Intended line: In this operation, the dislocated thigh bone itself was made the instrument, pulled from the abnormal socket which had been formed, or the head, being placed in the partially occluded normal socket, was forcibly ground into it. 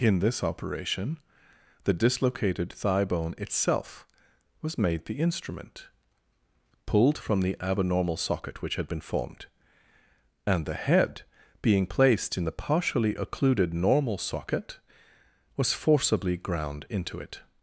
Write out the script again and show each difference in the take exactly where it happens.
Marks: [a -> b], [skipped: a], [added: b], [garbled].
In this operation, the dislocated thigh bone itself was made the instrument, pulled from the abnormal socket which had been formed, [or -> and] the head, being placed in the partially occluded normal socket, was forcibly ground into it.